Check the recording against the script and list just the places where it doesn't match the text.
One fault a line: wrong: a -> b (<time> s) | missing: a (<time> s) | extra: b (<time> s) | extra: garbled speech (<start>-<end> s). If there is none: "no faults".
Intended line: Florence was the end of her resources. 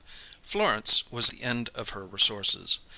no faults